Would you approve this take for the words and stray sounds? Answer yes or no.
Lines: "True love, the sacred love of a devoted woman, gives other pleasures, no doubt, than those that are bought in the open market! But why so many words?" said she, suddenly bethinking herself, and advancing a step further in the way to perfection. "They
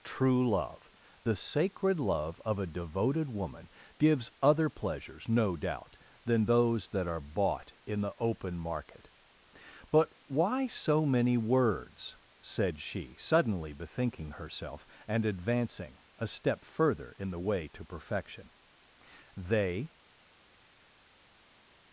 yes